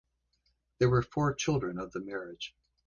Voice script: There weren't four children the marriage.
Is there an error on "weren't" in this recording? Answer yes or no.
yes